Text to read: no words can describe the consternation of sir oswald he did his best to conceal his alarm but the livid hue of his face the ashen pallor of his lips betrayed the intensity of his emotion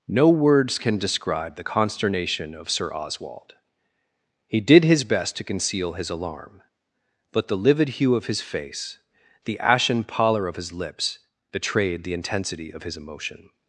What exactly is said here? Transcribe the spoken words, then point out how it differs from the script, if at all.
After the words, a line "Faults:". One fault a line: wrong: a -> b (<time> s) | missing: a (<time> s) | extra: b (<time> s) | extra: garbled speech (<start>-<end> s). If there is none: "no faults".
no words can describe the consternation of sir oswald he did his best to conceal his alarm but the livid hue of his face the ashen pallor of his lips betrayed the intensity of his emotion
Faults:
no faults